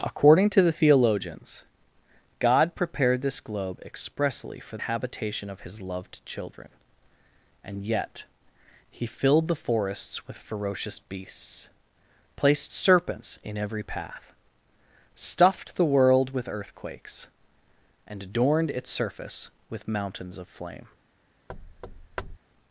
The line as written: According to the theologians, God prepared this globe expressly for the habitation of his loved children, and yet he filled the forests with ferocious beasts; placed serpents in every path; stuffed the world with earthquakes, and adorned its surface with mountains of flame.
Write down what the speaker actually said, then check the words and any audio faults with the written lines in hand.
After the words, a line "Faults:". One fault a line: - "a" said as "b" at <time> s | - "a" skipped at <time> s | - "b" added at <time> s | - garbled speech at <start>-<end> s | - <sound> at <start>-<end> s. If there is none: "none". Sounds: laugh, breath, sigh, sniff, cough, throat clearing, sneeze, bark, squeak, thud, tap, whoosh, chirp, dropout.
According to the theologians, God prepared this globe expressly for habitation of his loved children, and yet he filled the forests with ferocious beasts; placed serpents in every path; stuffed the world with earthquakes, and adorned its surface with mountains of flame.
Faults:
- "the" skipped at 4.8 s
- thud at 21.5-22.4 s